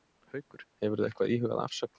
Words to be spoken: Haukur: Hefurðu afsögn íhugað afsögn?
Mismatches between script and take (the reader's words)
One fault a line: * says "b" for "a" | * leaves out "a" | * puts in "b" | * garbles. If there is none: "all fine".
* says "eitthvað" for "afsögn"